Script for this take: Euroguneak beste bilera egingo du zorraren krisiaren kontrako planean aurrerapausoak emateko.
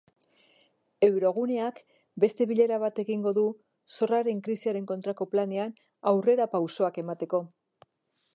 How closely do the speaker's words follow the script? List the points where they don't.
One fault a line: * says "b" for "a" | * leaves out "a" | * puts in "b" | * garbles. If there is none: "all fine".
* puts in "bat"